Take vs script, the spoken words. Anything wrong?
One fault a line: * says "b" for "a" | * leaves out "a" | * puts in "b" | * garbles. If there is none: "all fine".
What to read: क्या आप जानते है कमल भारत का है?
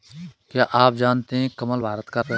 all fine